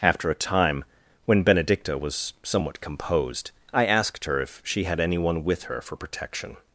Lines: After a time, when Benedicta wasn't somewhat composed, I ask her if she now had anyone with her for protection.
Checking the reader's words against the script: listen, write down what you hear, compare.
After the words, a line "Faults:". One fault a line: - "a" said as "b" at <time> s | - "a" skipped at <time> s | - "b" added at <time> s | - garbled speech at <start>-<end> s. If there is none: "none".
After a time, when Benedicta was somewhat composed, I asked her if she had anyone with her for protection.
Faults:
- "wasn't" said as "was" at 2.0 s
- "ask" said as "asked" at 3.9 s
- "now" skipped at 4.8 s